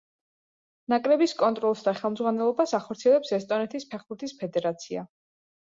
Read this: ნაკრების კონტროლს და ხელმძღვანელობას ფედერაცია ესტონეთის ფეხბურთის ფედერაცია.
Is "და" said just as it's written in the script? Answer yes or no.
yes